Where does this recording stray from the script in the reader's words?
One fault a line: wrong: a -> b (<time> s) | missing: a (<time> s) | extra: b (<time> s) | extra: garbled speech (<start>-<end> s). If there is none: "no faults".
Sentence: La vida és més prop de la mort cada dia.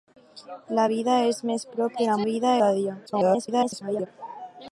wrong: mort -> vida (2.3 s)
extra: garbled speech (3.1-4.1 s)